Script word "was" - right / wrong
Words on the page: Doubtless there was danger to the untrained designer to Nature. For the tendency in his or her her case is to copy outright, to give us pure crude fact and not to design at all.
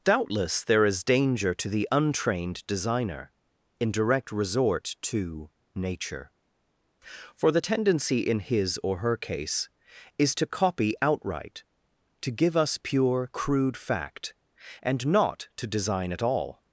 wrong